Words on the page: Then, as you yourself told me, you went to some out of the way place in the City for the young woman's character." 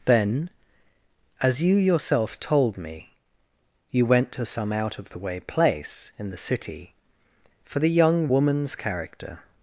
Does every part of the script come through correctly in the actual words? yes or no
yes